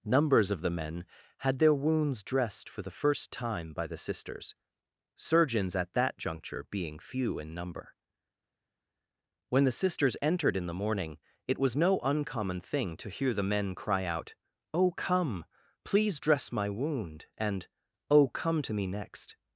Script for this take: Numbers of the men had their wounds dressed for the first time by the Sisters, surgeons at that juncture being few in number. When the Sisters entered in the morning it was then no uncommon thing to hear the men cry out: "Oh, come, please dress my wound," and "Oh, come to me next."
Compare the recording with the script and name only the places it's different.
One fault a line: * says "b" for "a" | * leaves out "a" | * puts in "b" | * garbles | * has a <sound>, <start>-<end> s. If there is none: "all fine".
* leaves out "then"